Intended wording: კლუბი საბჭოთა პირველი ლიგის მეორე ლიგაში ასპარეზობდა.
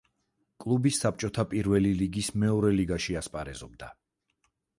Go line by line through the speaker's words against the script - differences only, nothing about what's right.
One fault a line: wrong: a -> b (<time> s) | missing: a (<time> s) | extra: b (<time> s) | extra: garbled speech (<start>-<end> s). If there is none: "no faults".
no faults